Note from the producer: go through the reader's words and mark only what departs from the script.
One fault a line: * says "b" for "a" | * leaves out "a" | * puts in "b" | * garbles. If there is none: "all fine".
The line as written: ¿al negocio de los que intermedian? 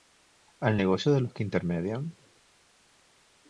all fine